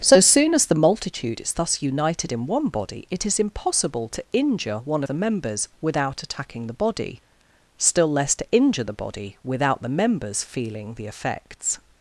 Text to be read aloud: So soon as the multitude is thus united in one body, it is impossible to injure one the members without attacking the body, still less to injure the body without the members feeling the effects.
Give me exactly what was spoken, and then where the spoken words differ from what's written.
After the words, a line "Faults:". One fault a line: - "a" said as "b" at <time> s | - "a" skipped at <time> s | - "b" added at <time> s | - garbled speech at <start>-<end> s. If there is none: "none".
So soon as the multitude is thus united in one body, it is impossible to injure one the members without attacking the body, still less to injure the body without the members feeling the effects.
Faults:
none